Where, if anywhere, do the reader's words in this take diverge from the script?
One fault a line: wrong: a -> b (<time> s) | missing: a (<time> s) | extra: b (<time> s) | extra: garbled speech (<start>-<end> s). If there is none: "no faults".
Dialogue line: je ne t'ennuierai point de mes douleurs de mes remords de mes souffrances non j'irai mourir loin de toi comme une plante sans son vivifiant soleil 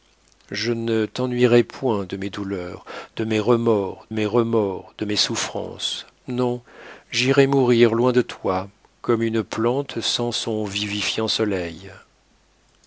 extra: mes remords (4.1 s)